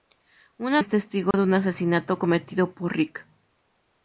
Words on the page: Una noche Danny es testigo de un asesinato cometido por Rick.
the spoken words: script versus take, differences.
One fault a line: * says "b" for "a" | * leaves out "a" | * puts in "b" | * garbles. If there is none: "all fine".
* leaves out "noche Danny"